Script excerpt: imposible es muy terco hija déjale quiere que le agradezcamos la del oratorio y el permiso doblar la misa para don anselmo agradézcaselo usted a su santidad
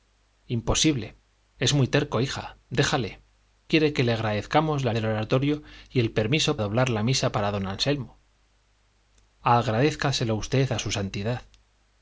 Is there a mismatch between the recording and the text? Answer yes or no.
no